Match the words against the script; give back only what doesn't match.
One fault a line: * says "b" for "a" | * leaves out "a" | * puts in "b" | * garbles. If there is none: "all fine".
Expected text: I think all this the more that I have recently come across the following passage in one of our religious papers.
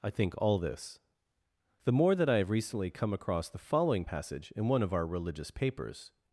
all fine